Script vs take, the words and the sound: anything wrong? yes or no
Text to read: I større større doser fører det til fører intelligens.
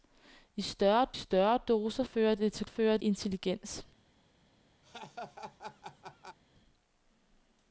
yes